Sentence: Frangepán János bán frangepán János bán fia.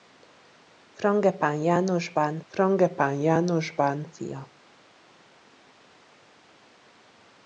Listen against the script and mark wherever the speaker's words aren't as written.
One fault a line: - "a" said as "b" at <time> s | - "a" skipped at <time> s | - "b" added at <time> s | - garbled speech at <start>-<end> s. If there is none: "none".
none